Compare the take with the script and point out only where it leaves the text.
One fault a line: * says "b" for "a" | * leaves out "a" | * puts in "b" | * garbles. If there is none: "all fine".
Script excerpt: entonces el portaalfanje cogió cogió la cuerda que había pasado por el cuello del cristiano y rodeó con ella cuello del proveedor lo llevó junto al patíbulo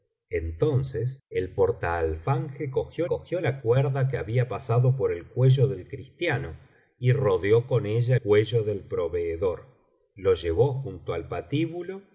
all fine